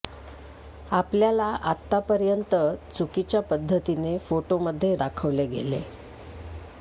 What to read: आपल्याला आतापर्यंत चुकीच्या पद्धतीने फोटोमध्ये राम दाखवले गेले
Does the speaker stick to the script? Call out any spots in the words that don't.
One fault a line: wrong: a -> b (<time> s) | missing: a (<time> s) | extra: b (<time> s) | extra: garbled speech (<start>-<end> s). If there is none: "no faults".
missing: राम (5.0 s)